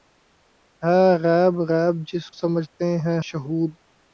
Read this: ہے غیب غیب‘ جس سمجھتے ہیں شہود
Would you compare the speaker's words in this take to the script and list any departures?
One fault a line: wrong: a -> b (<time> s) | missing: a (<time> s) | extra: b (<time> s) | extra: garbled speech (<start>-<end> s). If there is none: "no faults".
no faults